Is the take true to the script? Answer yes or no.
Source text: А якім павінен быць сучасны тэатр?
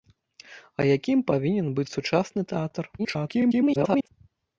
no